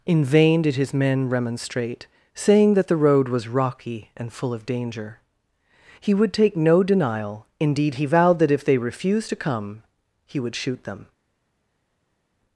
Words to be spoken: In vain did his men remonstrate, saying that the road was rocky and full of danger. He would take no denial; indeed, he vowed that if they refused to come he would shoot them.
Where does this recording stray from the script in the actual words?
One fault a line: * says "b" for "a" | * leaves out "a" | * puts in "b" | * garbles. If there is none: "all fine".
all fine